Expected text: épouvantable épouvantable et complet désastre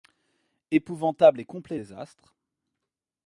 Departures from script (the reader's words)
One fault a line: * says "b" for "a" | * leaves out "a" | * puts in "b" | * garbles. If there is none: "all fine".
* leaves out "épouvantable"